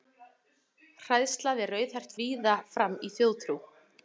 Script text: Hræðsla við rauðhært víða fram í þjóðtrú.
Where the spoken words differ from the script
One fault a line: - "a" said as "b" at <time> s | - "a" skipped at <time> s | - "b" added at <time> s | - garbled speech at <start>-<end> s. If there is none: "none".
none